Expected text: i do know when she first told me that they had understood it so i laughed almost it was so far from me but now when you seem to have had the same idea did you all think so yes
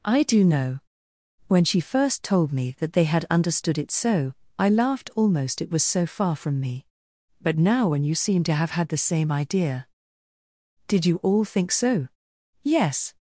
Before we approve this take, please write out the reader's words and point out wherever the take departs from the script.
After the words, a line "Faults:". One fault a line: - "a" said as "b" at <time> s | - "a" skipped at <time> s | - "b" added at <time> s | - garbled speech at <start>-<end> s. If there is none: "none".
i do know when she first told me that they had understood it so i laughed almost it was so far from me but now when you seem to have had the same idea did you all think so yes
Faults:
none